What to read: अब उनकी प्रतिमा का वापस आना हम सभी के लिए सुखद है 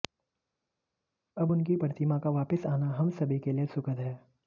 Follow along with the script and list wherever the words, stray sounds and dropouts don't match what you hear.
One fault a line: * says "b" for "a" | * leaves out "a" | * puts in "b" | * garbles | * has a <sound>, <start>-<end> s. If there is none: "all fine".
all fine